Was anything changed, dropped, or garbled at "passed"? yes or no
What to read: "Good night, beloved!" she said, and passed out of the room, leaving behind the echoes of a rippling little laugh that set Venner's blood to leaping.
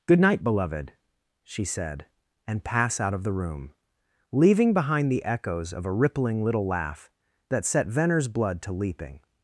yes